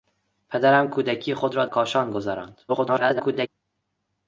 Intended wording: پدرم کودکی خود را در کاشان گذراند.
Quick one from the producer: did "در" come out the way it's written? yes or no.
no